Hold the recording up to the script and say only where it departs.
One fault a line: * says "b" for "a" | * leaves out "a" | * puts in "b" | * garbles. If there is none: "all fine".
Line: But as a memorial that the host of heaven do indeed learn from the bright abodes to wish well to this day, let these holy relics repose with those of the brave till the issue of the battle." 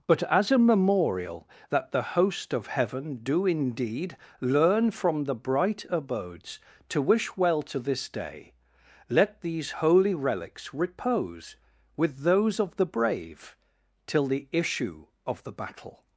all fine